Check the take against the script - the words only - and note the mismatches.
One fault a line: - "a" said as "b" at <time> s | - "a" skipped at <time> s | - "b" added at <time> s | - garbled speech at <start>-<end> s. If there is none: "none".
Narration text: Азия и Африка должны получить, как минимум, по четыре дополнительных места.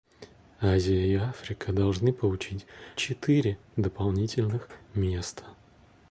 - "как минимум по" skipped at 2.6 s